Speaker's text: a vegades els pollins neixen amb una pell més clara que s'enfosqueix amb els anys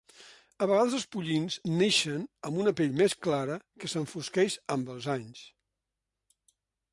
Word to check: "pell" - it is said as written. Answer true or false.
true